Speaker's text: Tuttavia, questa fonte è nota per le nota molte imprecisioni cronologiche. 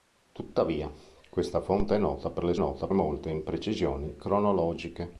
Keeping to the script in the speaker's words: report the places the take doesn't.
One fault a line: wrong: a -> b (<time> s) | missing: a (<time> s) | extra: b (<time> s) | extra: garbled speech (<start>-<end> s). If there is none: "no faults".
no faults